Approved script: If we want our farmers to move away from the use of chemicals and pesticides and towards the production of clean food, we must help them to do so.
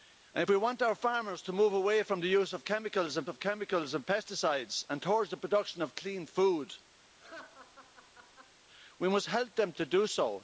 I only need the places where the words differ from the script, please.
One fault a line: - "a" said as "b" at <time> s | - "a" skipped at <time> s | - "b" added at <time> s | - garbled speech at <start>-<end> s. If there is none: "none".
- "of chemicals and" added at 3.3 s